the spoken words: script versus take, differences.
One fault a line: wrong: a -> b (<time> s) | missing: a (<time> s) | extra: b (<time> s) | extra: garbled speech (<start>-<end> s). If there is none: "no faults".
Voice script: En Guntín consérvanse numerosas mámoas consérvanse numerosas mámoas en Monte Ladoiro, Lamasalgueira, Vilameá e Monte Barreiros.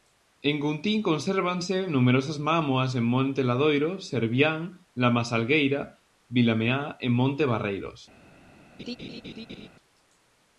missing: consérvanse numerosas mámoas (2.9 s)
extra: Servián (4.1 s)